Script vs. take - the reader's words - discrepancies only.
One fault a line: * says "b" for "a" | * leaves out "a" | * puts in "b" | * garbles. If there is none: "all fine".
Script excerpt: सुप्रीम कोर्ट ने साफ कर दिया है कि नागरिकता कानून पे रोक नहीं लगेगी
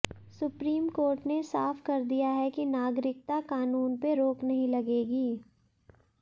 all fine